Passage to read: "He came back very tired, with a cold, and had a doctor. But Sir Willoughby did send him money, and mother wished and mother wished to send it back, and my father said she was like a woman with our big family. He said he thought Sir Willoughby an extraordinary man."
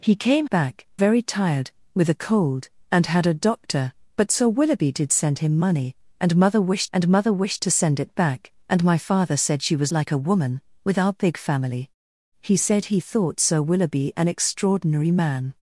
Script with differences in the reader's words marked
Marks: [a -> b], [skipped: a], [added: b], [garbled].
"He came back very tired, with a cold, and had a doctor. But Sir Willoughby did send him money, and mother wished and mother wished to send it back, and my father said she was like a woman with our big family. He said he thought Sir Willoughby an extraordinary man."